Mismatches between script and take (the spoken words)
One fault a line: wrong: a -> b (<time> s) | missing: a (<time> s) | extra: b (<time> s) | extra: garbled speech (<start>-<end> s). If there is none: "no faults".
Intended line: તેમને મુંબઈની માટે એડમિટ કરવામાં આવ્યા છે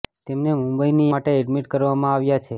no faults